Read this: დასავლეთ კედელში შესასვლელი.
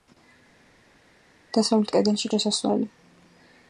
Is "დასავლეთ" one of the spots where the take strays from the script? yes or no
no